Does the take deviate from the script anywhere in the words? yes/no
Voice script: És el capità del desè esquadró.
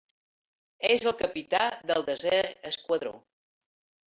no